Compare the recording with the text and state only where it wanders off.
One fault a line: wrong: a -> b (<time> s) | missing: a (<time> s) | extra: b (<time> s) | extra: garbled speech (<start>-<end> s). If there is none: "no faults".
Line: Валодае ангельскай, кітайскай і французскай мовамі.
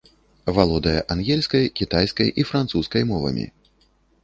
no faults